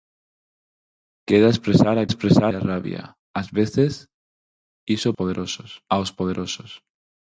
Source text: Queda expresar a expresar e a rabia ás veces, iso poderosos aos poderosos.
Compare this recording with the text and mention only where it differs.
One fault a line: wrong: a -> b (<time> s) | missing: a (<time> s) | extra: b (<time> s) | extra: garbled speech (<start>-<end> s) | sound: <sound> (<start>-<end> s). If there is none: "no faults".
no faults